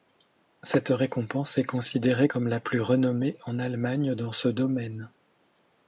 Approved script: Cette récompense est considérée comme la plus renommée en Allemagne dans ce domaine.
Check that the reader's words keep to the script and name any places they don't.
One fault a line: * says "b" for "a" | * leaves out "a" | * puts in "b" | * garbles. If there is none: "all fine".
all fine